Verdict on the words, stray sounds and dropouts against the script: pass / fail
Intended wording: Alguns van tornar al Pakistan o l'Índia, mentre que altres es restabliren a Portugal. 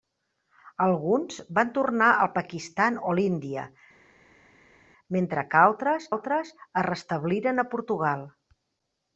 fail